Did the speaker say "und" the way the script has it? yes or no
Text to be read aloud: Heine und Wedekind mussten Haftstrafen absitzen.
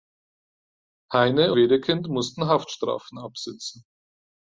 no